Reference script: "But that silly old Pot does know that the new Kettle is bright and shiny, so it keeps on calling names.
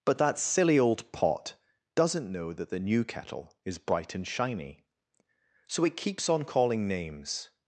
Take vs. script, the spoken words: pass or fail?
fail